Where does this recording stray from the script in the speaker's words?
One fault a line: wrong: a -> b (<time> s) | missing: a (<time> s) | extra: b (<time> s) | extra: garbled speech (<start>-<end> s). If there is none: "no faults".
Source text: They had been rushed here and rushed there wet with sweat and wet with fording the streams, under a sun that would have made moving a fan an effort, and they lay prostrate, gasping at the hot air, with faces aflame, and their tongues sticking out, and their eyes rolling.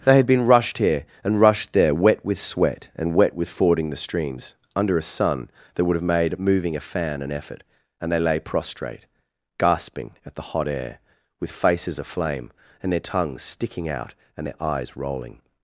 no faults